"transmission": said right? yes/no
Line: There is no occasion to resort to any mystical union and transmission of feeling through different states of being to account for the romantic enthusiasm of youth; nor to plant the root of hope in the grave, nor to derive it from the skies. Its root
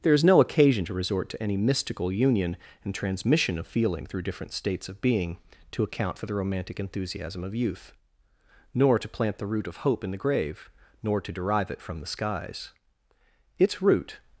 yes